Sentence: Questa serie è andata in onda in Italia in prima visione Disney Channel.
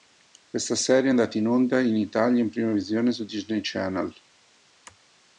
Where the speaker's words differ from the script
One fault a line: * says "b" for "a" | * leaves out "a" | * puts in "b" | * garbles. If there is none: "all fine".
* puts in "su"